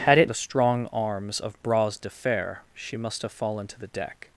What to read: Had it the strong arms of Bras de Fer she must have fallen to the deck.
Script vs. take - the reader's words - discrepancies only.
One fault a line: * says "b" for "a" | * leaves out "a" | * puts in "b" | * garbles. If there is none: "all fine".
all fine